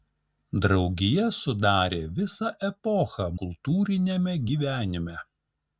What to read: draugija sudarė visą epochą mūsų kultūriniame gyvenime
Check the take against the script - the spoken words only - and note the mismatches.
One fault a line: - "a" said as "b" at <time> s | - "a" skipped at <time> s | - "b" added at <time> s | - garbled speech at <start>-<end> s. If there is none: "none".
- "mūsų" skipped at 3.3 s